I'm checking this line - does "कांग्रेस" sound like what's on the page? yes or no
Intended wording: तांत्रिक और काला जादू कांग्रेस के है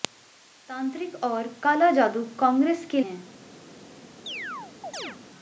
yes